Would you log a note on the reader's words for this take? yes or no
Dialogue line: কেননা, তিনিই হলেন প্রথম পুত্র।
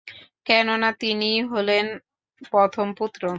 no